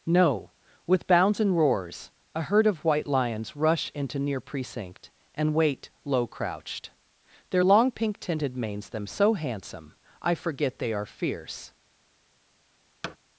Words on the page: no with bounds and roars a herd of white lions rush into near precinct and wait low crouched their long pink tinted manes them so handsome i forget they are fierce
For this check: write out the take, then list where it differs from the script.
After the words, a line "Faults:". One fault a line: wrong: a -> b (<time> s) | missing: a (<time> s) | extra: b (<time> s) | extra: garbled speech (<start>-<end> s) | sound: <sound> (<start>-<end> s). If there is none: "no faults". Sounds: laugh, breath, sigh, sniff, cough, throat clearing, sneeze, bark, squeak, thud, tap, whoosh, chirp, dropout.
no with bounds and roars a herd of white lions rush into near precinct and wait low crouched their long pink tinted manes them so handsome i forget they are fierce
Faults:
sound: thud (13.0-13.2 s)